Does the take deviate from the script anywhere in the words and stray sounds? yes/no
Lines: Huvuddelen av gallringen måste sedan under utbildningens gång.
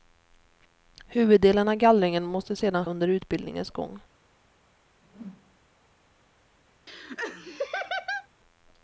yes